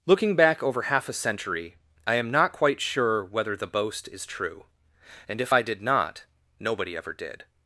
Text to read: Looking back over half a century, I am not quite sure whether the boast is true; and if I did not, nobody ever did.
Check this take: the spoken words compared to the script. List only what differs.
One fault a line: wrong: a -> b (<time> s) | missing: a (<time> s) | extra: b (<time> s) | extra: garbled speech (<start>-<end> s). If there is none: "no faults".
no faults